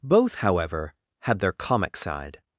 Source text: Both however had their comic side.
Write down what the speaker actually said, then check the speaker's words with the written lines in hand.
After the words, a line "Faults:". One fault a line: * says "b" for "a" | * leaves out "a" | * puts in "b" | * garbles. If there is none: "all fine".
Both however had their comic side.
Faults:
all fine